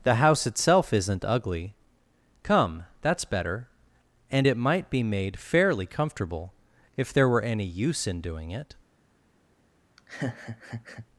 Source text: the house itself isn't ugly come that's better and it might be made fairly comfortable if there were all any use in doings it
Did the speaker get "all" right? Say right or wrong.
wrong